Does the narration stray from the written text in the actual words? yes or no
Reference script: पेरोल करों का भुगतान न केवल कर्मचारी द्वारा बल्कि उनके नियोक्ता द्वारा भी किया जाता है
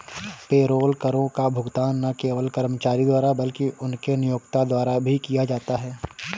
no